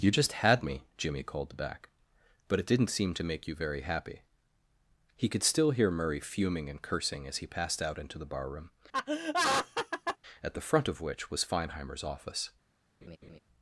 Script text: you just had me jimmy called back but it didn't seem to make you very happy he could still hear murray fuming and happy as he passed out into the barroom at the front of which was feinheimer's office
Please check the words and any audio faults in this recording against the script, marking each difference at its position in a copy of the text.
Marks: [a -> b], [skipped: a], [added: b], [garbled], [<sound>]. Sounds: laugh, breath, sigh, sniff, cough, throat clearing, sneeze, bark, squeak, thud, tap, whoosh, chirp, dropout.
you just had me jimmy called back but it didn't seem to make you very happy he could still hear murray fuming and [happy -> cursing] as he passed out into the barroom [laugh] at the front of which was feinheimer's office [laugh]